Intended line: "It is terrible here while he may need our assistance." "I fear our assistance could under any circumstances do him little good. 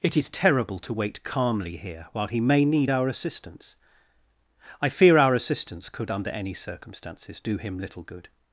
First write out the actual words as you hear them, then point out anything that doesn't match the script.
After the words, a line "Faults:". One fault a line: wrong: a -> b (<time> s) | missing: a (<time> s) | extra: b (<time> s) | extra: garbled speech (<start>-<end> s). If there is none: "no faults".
"It is terrible to wait calmly here while he may need our assistance." "I fear our assistance could under any circumstances do him little good.
Faults:
extra: to wait calmly (0.8 s)